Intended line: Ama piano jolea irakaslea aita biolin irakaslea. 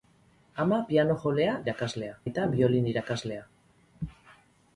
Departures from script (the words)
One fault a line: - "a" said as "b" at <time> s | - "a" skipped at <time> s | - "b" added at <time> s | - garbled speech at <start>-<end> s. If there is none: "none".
none